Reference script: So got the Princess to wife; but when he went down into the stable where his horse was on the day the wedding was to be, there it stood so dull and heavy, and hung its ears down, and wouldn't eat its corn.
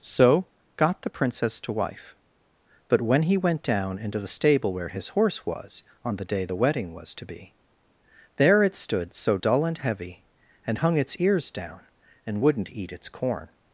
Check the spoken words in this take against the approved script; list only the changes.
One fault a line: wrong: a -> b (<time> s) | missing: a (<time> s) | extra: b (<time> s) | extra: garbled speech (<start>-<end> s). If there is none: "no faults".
no faults